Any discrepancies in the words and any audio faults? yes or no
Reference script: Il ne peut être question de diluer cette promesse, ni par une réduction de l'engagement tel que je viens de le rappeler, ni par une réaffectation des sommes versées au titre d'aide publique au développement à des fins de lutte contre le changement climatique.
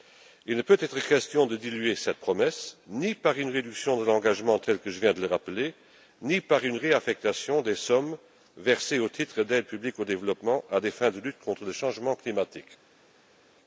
no